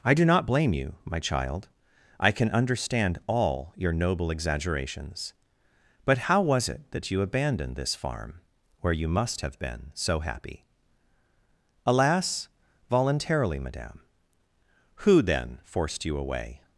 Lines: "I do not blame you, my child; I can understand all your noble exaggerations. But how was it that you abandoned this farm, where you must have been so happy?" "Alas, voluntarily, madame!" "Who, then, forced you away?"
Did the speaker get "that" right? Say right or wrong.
right